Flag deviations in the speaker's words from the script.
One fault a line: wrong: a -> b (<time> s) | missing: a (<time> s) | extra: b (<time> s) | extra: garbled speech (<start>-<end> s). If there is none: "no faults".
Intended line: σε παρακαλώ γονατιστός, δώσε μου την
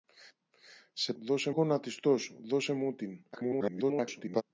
wrong: παρακαλώ -> δώσε (1.2 s)
extra: garbled speech (3.3-4.4 s)